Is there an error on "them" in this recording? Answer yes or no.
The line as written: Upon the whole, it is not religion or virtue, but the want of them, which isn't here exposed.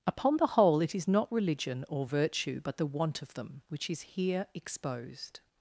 no